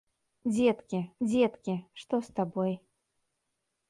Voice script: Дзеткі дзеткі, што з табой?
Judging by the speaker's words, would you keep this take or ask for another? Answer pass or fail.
pass